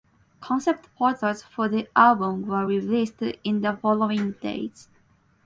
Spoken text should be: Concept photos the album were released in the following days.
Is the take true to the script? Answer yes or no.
no